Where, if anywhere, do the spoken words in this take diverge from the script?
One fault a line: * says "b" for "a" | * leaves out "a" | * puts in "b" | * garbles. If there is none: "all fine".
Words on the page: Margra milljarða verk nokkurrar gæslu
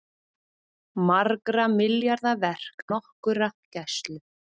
all fine